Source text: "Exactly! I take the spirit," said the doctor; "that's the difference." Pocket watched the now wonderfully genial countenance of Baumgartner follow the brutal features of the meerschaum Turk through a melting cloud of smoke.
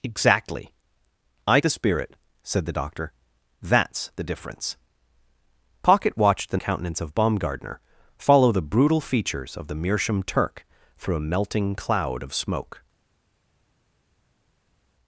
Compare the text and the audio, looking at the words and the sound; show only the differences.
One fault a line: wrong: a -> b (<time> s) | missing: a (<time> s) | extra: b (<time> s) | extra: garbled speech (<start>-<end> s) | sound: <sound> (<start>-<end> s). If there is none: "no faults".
missing: take (1.6 s)
missing: now wonderfully genial (6.6 s)